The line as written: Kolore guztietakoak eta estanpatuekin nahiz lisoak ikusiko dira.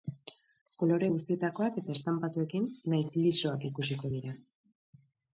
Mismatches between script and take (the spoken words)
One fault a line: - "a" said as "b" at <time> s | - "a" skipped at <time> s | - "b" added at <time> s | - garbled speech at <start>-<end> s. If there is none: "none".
none